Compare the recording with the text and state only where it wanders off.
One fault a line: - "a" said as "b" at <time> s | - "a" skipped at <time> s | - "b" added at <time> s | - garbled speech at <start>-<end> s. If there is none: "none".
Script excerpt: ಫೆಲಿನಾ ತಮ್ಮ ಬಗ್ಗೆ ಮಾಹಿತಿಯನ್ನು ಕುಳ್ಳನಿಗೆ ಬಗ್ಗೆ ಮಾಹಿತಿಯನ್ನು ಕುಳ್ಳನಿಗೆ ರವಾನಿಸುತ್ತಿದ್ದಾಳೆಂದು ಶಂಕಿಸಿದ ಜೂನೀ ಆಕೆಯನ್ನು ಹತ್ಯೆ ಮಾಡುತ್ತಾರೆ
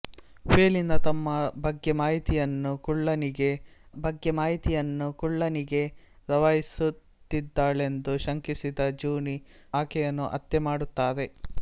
none